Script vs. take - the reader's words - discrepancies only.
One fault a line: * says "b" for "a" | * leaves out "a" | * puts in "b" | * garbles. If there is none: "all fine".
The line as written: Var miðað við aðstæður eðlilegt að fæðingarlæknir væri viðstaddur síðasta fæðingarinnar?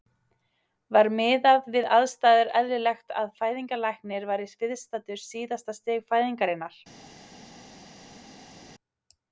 * puts in "stig"